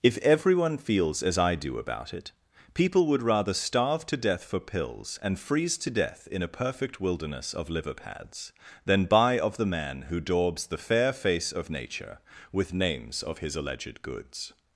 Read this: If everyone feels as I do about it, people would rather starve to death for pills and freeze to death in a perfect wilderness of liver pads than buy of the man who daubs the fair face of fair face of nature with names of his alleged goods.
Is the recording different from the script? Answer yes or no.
yes